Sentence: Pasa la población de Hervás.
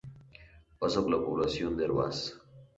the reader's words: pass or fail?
pass